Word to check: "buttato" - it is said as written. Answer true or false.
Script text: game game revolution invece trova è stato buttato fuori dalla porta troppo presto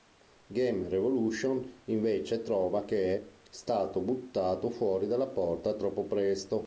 true